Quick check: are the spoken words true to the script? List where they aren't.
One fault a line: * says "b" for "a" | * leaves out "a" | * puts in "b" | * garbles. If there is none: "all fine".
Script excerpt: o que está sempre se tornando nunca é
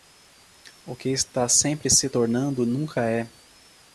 all fine